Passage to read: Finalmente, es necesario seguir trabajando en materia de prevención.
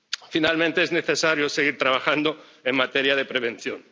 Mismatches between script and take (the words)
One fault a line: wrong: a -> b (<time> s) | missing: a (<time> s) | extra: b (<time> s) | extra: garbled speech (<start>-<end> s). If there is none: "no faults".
no faults